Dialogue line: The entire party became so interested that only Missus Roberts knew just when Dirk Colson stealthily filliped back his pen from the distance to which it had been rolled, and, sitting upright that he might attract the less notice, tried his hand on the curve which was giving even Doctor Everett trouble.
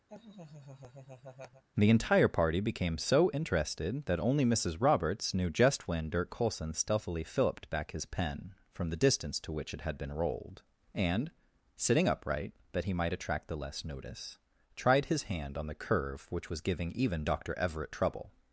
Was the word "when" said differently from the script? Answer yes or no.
no